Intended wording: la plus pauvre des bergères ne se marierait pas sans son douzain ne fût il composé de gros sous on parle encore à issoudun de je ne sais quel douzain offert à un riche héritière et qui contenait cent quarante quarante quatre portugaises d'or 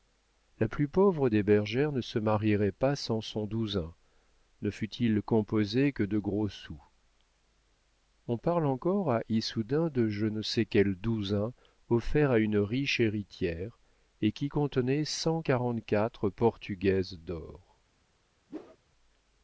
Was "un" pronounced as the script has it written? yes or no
no